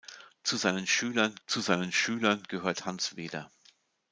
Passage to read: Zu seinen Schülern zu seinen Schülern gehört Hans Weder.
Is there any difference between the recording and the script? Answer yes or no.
no